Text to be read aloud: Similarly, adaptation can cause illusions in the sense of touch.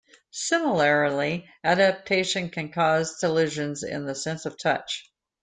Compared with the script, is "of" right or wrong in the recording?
right